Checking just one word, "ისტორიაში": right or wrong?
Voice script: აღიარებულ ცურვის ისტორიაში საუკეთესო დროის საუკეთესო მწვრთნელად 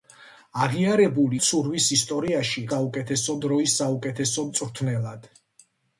right